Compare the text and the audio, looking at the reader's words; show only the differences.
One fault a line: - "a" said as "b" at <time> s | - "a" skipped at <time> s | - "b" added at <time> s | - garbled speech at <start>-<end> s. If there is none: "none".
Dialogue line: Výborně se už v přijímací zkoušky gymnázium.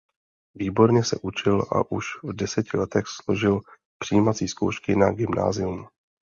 - "učil a" added at 1.2 s
- "deseti letech složil" added at 2.3 s
- "na" added at 5.0 s